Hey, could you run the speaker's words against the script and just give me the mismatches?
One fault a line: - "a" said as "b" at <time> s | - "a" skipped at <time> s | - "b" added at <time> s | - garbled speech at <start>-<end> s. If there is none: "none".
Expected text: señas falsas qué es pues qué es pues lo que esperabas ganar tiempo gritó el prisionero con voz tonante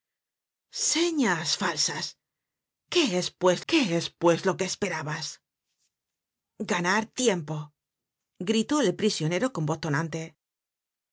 none